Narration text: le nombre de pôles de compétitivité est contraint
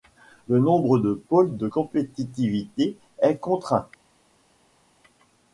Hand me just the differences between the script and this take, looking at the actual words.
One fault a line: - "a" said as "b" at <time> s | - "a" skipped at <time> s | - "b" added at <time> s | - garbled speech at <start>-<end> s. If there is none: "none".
none